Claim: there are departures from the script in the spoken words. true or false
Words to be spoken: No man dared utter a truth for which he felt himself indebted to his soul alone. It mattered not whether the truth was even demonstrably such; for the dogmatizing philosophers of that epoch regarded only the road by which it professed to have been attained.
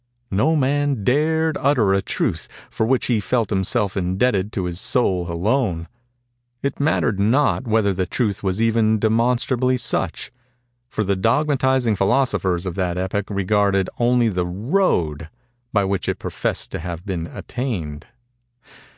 false